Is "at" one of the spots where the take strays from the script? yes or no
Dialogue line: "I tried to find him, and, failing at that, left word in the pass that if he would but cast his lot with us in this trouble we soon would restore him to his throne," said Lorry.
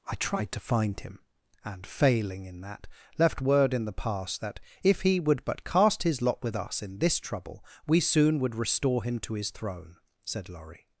yes